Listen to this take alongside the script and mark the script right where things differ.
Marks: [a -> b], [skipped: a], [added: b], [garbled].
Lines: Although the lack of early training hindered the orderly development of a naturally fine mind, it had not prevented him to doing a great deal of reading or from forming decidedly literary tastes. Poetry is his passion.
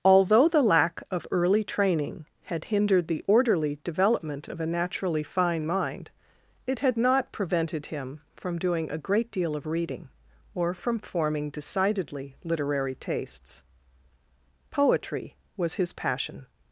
Although the lack of early training [added: had] hindered the orderly development of a naturally fine mind, it had not prevented him [to -> from] doing a great deal of reading or from forming decidedly literary tastes. Poetry [is -> was] his passion.